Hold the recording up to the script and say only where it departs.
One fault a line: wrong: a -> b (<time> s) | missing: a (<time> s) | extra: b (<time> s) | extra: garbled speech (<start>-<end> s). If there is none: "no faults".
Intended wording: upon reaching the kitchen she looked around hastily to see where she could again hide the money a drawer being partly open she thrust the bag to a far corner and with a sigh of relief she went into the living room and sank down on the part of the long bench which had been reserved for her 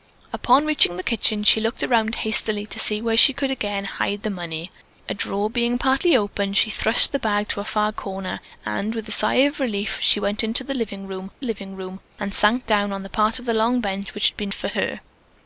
extra: living room (11.4 s)
missing: reserved (14.5 s)